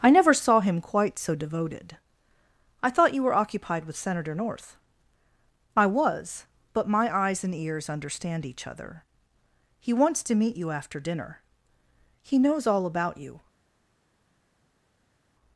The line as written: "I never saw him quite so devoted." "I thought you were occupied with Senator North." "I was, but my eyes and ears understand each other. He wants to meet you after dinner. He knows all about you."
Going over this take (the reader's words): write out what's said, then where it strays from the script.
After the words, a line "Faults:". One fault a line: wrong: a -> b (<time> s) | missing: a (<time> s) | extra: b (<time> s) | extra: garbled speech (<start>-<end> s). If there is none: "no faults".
"I never saw him quite so devoted." "I thought you were occupied with Senator North." "I was, but my eyes and ears understand each other. He wants to meet you after dinner. He knows all about you."
Faults:
no faults